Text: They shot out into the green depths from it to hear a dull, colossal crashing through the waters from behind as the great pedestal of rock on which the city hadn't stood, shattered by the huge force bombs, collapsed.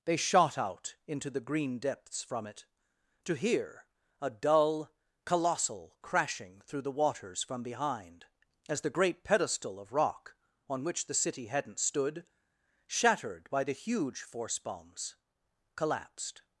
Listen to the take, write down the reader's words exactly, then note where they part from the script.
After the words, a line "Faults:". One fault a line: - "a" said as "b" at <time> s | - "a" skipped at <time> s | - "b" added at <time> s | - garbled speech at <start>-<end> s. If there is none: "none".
They shot out into the green depths from it to hear a dull, colossal crashing through the waters from behind as the great pedestal of rock on which the city hadn't stood, shattered by the huge force bombs, collapsed.
Faults:
none